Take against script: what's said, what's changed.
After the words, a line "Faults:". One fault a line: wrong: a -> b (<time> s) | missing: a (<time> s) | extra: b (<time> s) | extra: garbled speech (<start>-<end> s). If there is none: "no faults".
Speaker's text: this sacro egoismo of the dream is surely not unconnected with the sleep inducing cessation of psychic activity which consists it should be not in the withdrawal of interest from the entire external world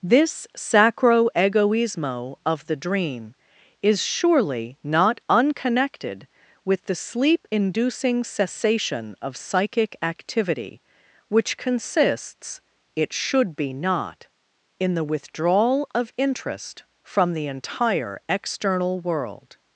this sacro egoismo of the dream is surely not unconnected with the sleep inducing cessation of psychic activity which consists it should be not in the withdrawal of interest from the entire external world
Faults:
no faults